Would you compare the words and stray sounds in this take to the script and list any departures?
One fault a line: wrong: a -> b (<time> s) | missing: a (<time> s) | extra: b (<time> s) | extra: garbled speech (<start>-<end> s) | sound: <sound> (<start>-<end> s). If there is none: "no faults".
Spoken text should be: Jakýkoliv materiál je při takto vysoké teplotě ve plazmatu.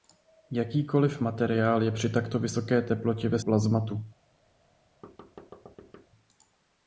sound: thud (5.0-6.1 s)